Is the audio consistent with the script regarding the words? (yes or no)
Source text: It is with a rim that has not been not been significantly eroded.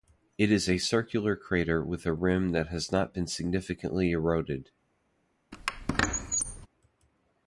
no